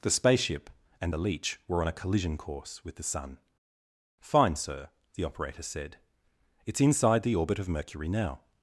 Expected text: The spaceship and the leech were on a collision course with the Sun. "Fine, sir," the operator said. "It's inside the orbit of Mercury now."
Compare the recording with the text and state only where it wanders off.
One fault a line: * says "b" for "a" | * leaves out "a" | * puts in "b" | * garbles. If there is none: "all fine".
all fine